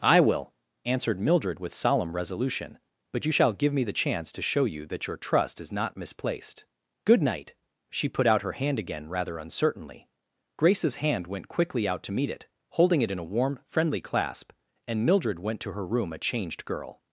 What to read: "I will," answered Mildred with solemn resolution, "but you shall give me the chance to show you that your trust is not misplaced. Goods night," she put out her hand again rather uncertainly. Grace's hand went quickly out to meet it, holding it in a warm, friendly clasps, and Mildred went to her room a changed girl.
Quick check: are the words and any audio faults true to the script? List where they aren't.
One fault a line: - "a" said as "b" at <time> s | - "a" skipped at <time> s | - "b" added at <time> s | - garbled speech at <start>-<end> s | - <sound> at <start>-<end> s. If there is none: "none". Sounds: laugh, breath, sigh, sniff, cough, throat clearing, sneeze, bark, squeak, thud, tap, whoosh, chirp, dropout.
- "Goods" said as "Good" at 7.0 s
- "clasps" said as "clasp" at 14.0 s